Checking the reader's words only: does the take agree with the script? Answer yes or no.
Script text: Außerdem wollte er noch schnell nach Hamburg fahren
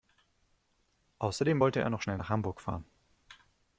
yes